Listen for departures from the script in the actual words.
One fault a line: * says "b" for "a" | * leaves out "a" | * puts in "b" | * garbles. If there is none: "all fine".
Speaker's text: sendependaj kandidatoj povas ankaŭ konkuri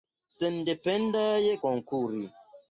* leaves out "kandidatoj povas ankaŭ"